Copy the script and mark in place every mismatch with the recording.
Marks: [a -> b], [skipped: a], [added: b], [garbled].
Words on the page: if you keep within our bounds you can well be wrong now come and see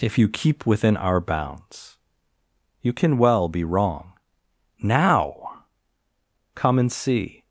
if you keep within our bounds you can well be wrong now come and see